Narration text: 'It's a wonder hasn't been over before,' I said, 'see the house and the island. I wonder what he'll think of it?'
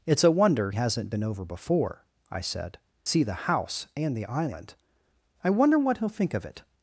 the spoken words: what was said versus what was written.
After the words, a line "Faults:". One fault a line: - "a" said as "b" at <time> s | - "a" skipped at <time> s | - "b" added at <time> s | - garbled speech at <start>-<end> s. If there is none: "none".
'It's a wonder hasn't been over before,' I said, 'see the house and the island. I wonder what he'll think of it?'
Faults:
none